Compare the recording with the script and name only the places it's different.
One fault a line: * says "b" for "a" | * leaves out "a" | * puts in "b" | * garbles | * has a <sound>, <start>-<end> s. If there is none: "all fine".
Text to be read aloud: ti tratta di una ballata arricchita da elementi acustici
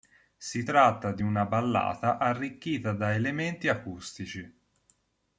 * says "si" for "ti"